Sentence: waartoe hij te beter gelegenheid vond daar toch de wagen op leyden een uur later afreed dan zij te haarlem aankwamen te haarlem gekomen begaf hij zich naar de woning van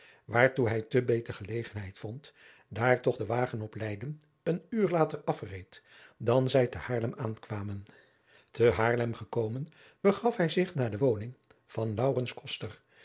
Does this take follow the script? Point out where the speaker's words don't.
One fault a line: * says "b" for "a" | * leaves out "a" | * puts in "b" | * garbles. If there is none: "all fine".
all fine